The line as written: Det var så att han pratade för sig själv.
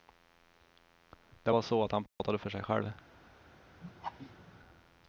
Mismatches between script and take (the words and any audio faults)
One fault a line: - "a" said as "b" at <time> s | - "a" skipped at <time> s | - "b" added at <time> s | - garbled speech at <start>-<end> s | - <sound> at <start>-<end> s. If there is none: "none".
- dropout at 2.1-2.2 s
- laugh at 3.8-4.6 s